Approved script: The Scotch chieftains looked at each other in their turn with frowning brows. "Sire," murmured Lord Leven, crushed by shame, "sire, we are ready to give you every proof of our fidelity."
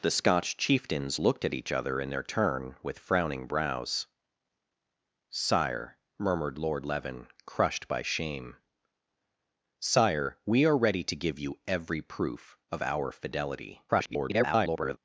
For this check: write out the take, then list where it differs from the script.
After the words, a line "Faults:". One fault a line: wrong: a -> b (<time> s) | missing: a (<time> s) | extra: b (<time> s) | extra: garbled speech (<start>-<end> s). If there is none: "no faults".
The Scotch chieftains looked at each other in their turn with frowning brows. "Sire," murmured Lord Leven, crushed by shame, "sire, we are ready to give you every proof of our fidelity." [garbled]
Faults:
extra: garbled speech (13.9-15.0 s)